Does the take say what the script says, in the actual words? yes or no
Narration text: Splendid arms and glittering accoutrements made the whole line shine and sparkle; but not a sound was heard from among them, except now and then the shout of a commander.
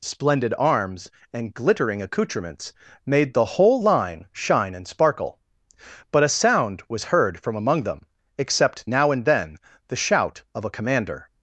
no